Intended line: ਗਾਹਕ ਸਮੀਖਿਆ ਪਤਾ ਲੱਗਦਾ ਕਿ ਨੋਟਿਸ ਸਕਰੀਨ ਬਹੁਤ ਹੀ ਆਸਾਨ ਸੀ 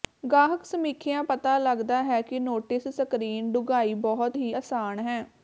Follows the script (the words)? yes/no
no